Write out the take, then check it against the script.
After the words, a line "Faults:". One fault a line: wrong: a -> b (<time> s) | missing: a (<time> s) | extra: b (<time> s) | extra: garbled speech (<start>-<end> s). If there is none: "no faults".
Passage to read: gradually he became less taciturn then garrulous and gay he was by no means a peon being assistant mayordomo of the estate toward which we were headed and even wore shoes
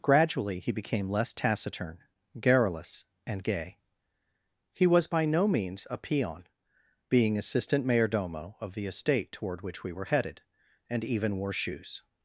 gradually he became less taciturn garrulous and gay he was by no means a peon being assistant mayordomo of the estate toward which we were headed and even wore shoes
Faults:
missing: then (2.0 s)